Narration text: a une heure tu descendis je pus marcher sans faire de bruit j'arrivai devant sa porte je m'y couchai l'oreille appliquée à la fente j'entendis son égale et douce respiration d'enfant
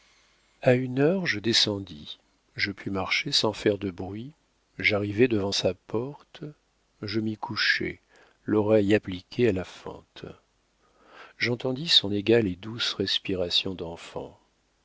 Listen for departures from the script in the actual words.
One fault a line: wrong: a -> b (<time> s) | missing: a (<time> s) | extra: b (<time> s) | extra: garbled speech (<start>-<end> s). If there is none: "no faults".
wrong: tu -> je (1.3 s)